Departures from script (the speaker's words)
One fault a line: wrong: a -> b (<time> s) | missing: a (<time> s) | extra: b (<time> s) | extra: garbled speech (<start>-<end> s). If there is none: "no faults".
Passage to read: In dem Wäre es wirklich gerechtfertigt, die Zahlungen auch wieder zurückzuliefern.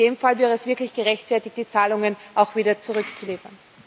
extra: Fall (0.2 s)